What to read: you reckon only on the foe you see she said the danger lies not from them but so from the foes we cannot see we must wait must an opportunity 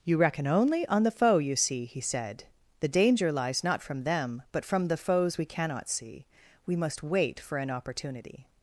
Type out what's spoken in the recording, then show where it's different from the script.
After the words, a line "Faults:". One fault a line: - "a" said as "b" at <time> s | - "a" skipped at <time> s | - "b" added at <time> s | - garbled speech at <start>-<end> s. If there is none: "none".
you reckon only on the foe you see he said the danger lies not from them but from the foes we cannot see we must wait for an opportunity
Faults:
- "she" said as "he" at 1.8 s
- "so" skipped at 4.6 s
- "must" said as "for" at 7.4 s